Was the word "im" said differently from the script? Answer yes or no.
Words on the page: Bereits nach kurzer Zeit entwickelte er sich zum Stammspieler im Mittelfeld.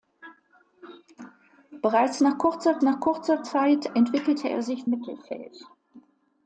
yes